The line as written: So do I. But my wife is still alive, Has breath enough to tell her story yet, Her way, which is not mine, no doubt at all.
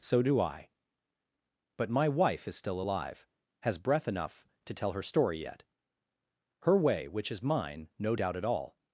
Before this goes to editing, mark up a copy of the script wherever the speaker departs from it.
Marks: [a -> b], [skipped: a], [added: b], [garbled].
So do I. But my wife is still alive, Has breath enough to tell her story yet, Her way, which is [skipped: not] mine, no doubt at all.